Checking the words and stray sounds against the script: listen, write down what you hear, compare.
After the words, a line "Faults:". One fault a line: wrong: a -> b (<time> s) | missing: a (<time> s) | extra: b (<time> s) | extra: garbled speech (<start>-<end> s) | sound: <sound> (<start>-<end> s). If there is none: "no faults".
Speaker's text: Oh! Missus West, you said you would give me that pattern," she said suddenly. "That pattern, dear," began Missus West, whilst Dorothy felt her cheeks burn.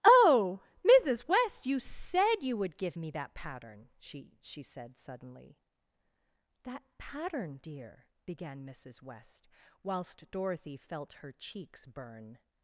Oh! Missus West, you said you would give me that pattern," she she said suddenly. "That pattern, dear," began Missus West, whilst Dorothy felt her cheeks burn.
Faults:
extra: she (4.4 s)